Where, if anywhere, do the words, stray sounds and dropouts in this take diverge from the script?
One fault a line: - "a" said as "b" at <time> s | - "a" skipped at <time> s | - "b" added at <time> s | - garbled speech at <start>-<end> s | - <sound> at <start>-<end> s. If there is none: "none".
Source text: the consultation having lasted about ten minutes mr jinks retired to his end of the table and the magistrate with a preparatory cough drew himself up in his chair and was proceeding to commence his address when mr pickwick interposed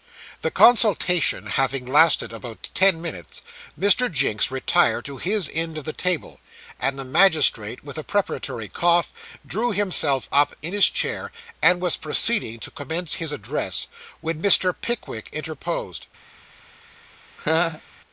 - laugh at 17.4-17.8 s